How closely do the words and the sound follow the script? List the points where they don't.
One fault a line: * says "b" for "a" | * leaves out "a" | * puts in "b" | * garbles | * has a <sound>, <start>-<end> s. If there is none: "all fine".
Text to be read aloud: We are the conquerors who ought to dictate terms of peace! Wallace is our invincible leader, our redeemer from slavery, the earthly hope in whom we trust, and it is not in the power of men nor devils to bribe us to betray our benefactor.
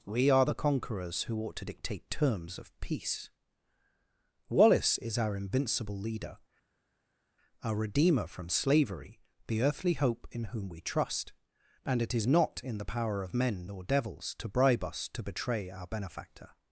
all fine